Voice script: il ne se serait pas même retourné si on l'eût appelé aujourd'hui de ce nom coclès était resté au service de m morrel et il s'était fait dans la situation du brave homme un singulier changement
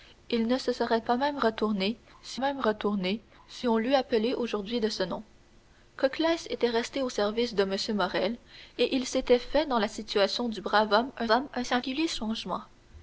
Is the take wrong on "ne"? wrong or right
right